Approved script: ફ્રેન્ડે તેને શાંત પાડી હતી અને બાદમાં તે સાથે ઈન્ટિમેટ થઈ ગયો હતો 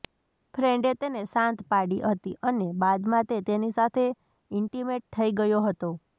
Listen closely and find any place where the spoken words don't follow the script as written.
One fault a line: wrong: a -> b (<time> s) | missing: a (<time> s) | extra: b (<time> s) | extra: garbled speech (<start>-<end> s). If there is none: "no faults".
extra: તેની (3.5 s)